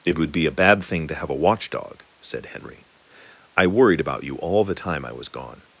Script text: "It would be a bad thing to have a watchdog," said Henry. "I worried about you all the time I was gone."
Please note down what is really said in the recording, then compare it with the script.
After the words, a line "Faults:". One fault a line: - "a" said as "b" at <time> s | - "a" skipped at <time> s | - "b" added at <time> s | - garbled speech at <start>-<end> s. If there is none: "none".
"It would be a bad thing to have a watchdog," said Henry. "I worried about you all the time I was gone."
Faults:
none